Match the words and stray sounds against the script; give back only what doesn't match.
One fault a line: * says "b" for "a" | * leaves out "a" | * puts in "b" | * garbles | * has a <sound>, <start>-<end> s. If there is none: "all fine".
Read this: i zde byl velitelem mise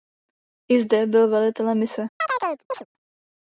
* has a chirp, 2.2-2.9 s